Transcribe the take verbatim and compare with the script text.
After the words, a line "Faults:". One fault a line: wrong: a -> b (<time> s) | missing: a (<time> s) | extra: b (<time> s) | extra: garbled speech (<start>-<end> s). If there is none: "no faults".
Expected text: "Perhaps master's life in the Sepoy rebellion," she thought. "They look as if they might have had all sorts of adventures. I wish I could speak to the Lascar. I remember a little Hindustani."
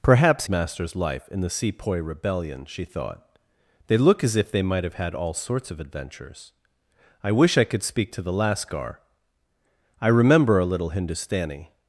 "Perhaps master's life in the Sepoy rebellion," she thought. "They look as if they might have had all sorts of adventures. I wish I could speak to the Lascar. I remember a little Hindustani."
Faults:
no faults